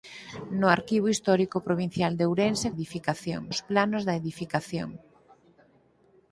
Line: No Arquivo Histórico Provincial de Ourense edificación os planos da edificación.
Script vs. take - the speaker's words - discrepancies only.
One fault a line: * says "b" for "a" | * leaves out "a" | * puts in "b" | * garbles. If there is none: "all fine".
all fine